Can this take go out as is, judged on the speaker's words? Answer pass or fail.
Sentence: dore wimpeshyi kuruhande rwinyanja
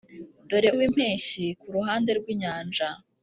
pass